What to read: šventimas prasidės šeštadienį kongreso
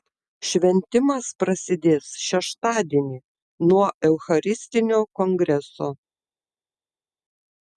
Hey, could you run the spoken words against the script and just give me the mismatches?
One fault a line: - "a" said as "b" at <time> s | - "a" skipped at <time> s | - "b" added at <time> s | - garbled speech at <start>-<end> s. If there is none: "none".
- "nuo eucharistinio" added at 3.7 s